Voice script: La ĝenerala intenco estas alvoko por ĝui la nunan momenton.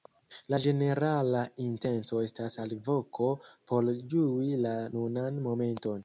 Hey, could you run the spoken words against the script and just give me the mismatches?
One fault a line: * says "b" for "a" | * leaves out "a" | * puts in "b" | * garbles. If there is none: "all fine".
all fine